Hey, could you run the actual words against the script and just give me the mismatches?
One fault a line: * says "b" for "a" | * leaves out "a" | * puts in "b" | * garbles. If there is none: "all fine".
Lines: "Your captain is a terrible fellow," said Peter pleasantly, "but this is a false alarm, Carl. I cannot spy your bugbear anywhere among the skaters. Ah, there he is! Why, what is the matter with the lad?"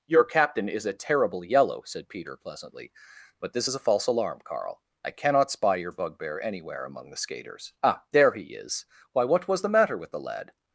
* says "yellow" for "fellow"
* says "was" for "is"